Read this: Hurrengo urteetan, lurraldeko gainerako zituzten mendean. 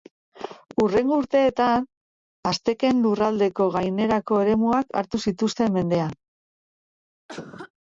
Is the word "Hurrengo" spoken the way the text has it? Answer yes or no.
yes